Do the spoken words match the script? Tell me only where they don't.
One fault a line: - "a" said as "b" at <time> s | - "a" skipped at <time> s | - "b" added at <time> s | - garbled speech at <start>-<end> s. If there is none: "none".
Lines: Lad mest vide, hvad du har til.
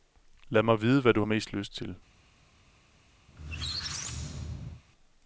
- "mest" said as "mig" at 0.6 s
- "mest lyst" added at 1.2 s